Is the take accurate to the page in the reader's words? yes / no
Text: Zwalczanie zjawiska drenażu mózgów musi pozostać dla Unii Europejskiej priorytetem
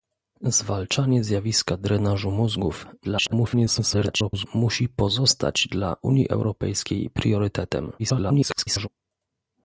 no